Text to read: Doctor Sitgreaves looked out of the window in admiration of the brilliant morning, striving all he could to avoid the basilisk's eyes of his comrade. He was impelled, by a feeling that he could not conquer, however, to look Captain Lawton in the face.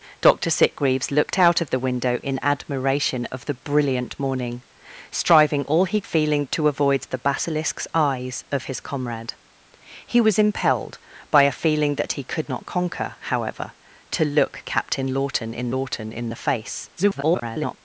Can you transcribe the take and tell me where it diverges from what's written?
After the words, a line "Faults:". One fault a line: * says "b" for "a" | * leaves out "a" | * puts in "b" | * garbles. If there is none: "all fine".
Doctor Sitgreaves looked out of the window in admiration of the brilliant morning, striving all he feeling to avoid the basilisk's eyes of his comrade. He was impelled, by a feeling that he could not conquer, however, to look Captain Lawton in Lawton in the face. [garbled]
Faults:
* says "feeling" for "could"
* puts in "Lawton in"
* garbles